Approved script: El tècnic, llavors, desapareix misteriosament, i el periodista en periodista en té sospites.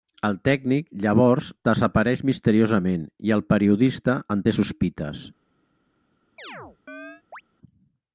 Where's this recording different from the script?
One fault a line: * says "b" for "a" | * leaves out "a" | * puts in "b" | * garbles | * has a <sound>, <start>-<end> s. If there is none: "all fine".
* leaves out "periodista en"
* has a chirp, 6.4-7.4 s